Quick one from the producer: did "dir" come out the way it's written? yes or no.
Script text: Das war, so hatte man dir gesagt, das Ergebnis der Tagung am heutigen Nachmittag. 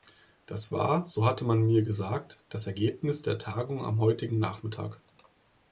no